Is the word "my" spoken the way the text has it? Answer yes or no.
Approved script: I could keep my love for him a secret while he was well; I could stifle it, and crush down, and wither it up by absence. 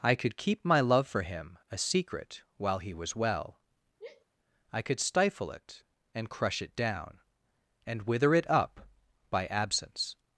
yes